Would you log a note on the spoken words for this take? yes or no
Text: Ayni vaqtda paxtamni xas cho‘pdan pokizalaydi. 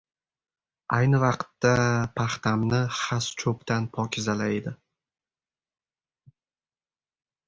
no